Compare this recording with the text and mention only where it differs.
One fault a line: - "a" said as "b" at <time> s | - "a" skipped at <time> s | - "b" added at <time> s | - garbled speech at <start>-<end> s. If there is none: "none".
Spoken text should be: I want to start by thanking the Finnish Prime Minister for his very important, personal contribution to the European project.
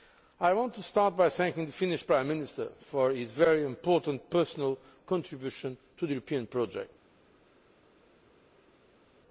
none